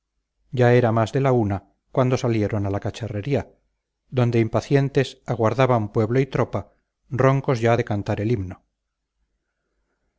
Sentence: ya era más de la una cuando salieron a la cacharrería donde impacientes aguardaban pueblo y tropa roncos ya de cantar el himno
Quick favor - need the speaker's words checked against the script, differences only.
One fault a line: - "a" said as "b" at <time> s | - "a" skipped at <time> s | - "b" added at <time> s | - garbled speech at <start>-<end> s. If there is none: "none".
none